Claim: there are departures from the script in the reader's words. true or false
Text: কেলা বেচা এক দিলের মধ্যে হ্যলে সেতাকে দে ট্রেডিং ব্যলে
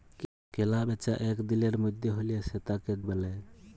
true